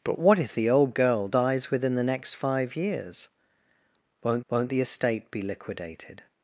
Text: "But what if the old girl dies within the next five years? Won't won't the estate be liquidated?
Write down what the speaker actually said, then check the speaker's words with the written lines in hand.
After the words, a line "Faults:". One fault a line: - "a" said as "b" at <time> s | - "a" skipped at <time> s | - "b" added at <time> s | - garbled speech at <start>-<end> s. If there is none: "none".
"But what if the old girl dies within the next five years? Won't won't the estate be liquidated?
Faults:
none